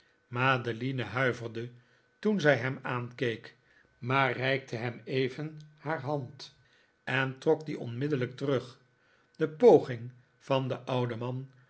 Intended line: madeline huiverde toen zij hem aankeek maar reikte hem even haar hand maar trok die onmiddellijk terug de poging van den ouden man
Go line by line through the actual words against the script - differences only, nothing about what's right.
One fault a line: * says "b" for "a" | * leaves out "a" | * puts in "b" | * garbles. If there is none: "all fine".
* says "en" for "maar"